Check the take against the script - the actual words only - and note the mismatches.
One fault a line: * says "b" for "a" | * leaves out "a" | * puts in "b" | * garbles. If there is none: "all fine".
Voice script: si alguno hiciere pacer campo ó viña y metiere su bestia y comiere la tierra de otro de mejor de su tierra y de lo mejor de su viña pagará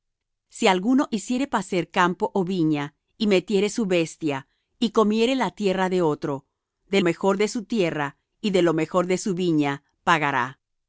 all fine